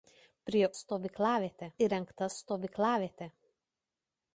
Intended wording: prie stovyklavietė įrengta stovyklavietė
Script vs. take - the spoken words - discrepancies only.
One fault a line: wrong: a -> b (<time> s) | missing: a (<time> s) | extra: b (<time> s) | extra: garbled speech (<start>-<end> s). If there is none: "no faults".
no faults